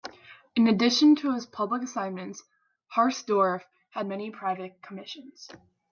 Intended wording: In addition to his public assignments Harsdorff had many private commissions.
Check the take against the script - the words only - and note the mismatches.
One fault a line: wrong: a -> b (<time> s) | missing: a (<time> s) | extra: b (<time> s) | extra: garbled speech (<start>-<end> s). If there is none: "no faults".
no faults